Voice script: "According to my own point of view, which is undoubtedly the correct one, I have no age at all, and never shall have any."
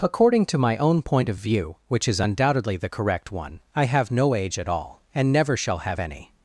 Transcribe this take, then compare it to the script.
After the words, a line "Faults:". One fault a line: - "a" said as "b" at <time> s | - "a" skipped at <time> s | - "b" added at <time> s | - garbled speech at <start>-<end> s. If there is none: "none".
"According to my own point of view, which is undoubtedly the correct one, I have no age at all, and never shall have any."
Faults:
none